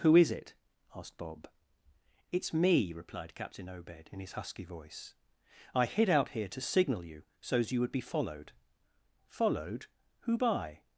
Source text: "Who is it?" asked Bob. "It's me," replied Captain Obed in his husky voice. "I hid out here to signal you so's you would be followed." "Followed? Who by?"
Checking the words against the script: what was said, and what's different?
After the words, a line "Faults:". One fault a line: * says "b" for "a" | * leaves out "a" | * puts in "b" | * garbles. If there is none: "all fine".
"Who is it?" asked Bob. "It's me," replied Captain Obed in his husky voice. "I hid out here to signal you so's you would be followed." "Followed? Who by?"
Faults:
all fine